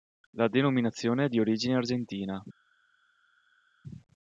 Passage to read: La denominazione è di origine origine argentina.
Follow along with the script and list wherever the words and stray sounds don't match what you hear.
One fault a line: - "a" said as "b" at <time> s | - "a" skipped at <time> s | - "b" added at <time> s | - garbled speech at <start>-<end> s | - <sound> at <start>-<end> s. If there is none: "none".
- "origine" skipped at 1.8 s